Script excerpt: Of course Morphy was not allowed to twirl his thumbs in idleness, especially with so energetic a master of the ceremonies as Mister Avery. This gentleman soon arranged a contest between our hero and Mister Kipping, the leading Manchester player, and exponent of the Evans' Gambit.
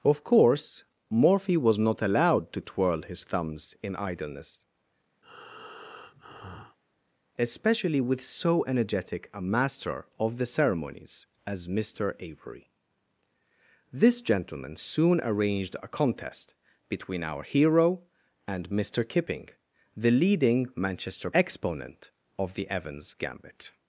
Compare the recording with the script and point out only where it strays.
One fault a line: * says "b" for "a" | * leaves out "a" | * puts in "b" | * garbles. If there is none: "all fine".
* leaves out "player and"